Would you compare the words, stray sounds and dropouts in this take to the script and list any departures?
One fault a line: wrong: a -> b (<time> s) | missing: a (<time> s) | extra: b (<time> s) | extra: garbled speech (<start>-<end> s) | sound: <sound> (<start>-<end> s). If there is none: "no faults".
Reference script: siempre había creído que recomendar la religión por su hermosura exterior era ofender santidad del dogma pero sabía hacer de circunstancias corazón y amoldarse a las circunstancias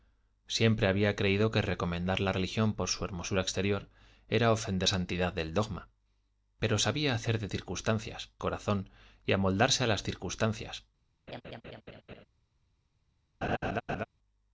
sound: laugh (11.3-12.2 s)
sound: laugh (13.4-14.0 s)